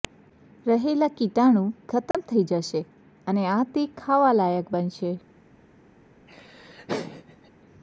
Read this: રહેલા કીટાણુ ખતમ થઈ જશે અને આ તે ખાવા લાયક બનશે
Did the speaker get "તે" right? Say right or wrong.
right